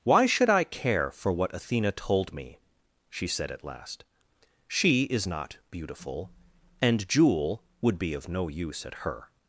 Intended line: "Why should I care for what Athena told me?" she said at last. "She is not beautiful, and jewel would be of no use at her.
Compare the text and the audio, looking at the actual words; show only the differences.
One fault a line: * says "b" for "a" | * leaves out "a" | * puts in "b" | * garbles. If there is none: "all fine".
all fine